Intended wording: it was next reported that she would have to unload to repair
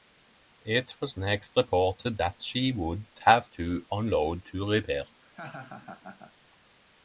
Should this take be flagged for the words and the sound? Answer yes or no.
yes